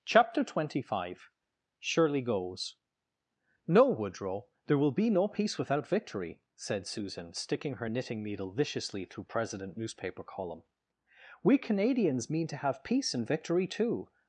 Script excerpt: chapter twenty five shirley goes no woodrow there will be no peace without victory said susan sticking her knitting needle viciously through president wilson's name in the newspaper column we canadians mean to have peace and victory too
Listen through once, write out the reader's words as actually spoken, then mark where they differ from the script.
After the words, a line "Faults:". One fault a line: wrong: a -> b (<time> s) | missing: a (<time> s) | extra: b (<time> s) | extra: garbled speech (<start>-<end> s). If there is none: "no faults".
chapter twenty five shirley goes no woodrow there will be no peace without victory said susan sticking her knitting needle viciously through president newspaper column we canadians mean to have peace and victory too
Faults:
missing: wilson's name in the (9.8 s)